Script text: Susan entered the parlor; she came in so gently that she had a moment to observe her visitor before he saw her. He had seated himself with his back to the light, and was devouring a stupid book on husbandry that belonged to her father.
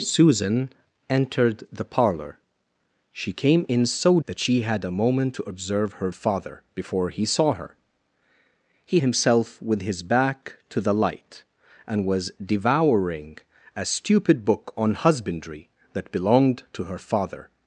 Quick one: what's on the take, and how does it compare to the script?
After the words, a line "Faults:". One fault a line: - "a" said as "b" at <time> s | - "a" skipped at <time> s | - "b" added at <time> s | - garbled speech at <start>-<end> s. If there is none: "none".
Susan entered the parlor; she came in so that she had a moment to observe her father before he saw her. He himself with his back to the light, and was devouring a stupid book on husbandry that belonged to her father.
Faults:
- "gently" skipped at 4.2 s
- "visitor" said as "father" at 6.1 s
- "had seated" skipped at 9.0 s